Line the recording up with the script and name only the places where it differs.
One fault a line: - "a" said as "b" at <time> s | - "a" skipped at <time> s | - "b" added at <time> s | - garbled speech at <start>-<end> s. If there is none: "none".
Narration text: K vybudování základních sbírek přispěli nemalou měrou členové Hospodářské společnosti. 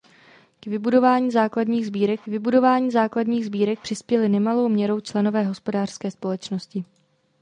- "vybudování základních sbírek" added at 2.3 s